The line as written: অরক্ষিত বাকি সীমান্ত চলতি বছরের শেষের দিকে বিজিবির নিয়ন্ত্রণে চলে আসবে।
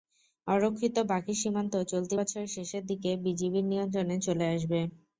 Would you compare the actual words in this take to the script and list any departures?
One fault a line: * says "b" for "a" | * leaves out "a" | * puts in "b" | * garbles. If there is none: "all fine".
all fine